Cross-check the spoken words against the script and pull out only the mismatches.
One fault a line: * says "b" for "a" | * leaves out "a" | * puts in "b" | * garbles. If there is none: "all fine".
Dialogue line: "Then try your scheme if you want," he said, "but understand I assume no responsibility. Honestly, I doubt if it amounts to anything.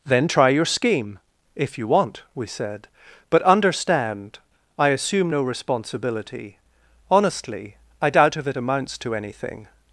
* says "we" for "he"